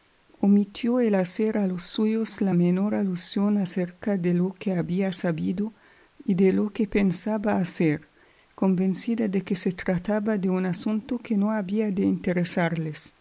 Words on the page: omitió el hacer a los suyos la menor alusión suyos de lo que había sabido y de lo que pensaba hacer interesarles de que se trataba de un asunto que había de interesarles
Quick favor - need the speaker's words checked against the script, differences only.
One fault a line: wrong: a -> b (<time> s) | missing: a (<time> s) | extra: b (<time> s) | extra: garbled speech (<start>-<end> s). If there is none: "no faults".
wrong: suyos -> acerca (3.6 s)
wrong: interesarles -> convencida (8.6 s)
extra: no (11.4 s)